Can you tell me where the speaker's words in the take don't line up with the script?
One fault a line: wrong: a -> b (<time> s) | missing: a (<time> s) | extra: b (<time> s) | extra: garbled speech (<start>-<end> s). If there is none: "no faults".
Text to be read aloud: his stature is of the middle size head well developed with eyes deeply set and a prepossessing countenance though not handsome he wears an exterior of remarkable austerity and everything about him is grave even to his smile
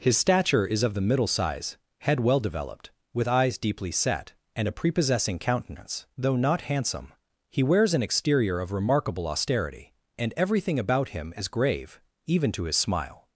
no faults